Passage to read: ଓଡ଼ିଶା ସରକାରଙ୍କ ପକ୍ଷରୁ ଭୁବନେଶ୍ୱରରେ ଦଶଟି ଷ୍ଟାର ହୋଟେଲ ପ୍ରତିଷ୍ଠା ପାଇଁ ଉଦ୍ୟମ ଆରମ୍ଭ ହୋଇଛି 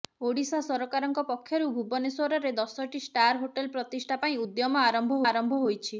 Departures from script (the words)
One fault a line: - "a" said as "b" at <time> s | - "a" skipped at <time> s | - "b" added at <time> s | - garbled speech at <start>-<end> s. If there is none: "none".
- "ଆରମ୍ଭ" added at 5.3 s